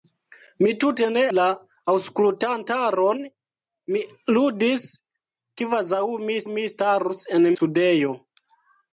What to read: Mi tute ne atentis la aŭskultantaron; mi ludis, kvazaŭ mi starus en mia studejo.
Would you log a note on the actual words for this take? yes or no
yes